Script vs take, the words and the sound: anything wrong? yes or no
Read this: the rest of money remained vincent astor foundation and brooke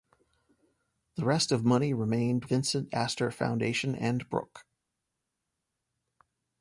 no